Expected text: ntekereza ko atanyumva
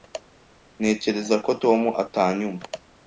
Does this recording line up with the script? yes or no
no